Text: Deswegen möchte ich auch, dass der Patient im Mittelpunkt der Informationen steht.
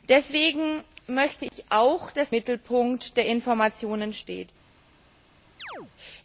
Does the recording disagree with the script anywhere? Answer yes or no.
yes